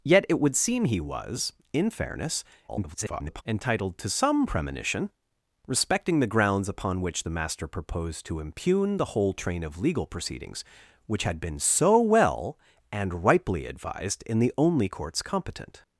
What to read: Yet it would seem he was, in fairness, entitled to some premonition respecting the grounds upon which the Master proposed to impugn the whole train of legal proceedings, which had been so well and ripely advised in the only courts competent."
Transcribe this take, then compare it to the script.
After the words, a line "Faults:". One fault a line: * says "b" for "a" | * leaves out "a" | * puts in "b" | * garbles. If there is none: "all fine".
Yet it would seem he was, in fairness, [garbled] entitled to some premonition respecting the grounds upon which the Master proposed to impugn the whole train of legal proceedings, which had been so well and ripely advised in the only courts competent."
Faults:
* garbles